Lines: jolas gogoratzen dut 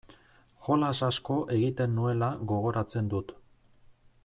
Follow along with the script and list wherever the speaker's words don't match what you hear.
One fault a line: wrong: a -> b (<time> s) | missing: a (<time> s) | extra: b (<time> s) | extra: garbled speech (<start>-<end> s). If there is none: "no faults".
extra: asko egiten nuela (1.1 s)